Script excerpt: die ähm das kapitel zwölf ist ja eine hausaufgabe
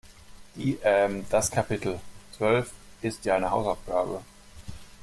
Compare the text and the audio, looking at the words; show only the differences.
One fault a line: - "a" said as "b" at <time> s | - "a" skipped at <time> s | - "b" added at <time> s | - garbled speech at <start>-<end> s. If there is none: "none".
none